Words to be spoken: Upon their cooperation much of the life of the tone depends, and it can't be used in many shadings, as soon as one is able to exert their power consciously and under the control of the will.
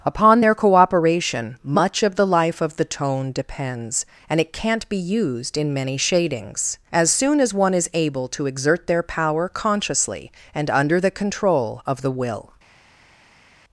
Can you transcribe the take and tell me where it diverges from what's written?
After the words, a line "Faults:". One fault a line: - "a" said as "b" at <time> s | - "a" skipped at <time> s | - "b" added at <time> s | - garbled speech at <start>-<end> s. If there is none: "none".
Upon their cooperation much of the life of the tone depends, and it can't be used in many shadings, as soon as one is able to exert their power consciously and under the control of the will.
Faults:
none